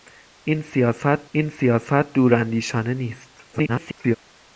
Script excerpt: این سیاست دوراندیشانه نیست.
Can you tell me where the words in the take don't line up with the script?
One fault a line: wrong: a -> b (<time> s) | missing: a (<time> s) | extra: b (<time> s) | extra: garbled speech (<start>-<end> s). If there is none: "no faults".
extra: این سیاست (1.3 s)
extra: garbled speech (3.5-4.2 s)